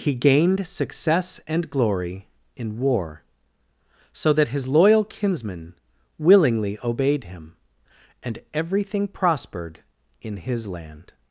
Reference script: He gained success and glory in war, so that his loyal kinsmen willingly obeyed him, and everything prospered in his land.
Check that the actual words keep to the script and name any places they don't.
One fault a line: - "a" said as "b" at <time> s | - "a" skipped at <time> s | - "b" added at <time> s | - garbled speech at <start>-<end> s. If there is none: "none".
none